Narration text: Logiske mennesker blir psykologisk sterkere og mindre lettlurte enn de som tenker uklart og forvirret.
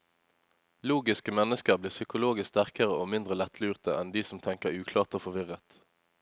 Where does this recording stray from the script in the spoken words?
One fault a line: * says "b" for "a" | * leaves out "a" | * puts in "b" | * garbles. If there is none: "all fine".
all fine